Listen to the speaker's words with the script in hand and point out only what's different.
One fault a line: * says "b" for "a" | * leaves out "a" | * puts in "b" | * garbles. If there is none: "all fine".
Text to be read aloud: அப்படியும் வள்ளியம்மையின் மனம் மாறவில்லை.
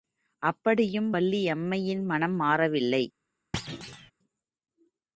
all fine